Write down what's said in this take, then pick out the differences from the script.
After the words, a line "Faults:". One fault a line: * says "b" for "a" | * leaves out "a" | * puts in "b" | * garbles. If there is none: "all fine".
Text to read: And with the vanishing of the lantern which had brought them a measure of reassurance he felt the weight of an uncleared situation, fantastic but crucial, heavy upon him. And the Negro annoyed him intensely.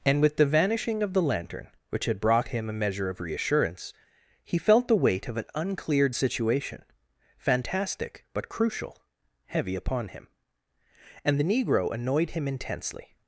And with the vanishing of the lantern which had brought him a measure of reassurance he felt the weight of an uncleared situation, fantastic but crucial, heavy upon him. And the Negro annoyed him intensely.
Faults:
* says "him" for "them"